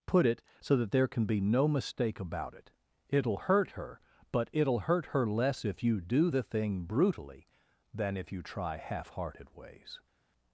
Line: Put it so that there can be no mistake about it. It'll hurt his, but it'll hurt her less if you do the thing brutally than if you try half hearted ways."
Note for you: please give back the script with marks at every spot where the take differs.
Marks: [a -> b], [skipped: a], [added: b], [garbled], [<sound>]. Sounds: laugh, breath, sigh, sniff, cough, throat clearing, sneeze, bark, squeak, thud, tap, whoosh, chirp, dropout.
Put it so that there can be no mistake about it. It'll hurt [his, -> her] but it'll hurt her less if you do the thing brutally than if you try half hearted ways."